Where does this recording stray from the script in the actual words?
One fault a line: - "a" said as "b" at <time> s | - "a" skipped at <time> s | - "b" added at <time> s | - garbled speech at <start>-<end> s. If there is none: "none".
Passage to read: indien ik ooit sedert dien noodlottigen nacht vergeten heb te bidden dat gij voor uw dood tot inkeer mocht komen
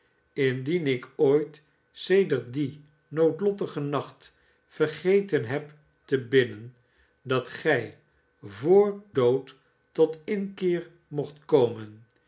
- "uw" skipped at 9.0 s